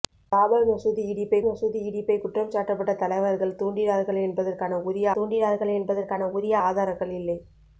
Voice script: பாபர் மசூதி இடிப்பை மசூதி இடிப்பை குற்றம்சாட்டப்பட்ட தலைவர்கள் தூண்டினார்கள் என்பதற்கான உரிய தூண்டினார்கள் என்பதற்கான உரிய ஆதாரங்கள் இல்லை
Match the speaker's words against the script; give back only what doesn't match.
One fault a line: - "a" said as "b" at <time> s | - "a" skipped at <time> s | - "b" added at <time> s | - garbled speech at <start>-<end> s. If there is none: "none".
none